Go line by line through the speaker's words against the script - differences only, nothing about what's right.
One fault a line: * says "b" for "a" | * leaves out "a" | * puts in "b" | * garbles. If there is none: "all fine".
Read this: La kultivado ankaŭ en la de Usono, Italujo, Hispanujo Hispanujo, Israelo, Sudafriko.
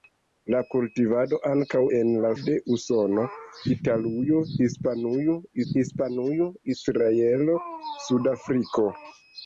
all fine